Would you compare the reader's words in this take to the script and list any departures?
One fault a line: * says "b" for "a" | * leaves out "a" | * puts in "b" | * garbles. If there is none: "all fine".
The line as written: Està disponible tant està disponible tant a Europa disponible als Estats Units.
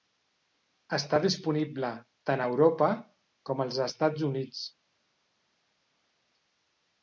* leaves out "està disponible tant"
* says "com" for "disponible"